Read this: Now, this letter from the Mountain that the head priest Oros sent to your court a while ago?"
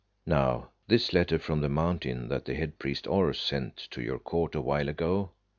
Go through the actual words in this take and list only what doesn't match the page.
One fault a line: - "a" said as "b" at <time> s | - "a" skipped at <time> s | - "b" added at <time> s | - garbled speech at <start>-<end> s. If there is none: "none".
none